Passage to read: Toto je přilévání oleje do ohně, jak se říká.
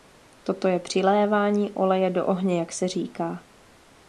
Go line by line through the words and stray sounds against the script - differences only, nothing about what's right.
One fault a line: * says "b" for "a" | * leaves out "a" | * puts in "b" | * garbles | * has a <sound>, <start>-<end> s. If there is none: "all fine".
all fine